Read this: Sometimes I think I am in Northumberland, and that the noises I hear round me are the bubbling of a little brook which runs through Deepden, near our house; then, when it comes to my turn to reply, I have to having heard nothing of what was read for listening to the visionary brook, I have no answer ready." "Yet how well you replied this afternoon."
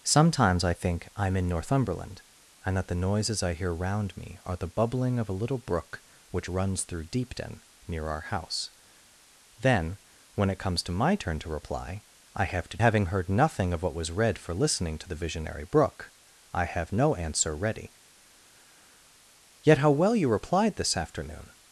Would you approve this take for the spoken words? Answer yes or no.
yes